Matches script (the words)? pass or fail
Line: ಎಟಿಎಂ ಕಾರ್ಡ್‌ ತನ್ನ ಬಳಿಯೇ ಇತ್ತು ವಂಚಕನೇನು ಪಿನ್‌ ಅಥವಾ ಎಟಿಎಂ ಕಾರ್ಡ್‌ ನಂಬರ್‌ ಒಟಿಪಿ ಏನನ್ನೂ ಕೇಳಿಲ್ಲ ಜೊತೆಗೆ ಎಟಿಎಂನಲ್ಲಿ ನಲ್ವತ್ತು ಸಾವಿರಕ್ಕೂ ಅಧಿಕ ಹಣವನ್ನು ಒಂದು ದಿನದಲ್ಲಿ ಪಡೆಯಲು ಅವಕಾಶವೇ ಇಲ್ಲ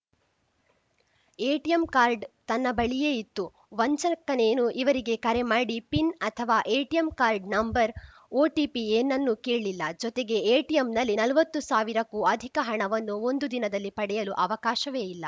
fail